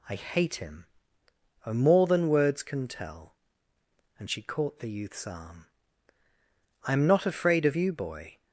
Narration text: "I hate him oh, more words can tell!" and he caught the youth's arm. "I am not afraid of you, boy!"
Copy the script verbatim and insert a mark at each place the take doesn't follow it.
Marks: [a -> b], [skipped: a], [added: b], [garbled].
"I hate him oh, more [added: than] words can tell!" and [he -> she] caught the youth's arm. "I am not afraid of you, boy!"